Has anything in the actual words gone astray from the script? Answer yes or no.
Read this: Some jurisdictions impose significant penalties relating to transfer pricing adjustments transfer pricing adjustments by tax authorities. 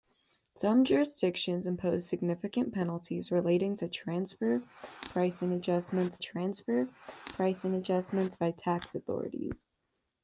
no